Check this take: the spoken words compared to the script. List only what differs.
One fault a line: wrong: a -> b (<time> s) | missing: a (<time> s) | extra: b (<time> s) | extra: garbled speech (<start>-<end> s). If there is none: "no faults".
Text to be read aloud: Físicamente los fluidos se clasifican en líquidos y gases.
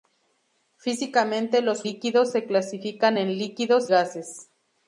wrong: fluidos -> líquidos (1.8 s)
missing: y (3.9 s)